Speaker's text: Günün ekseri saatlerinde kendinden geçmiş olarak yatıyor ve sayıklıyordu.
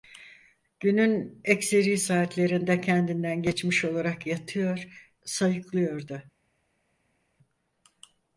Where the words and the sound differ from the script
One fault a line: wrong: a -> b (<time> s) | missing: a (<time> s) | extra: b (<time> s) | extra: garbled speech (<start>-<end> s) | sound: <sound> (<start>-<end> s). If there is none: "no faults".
missing: ve (4.9 s)